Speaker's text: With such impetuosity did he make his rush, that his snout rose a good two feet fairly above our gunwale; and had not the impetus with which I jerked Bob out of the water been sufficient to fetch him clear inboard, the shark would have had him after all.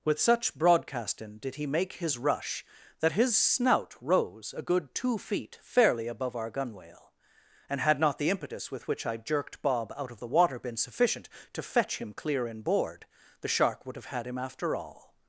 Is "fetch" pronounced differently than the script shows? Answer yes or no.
no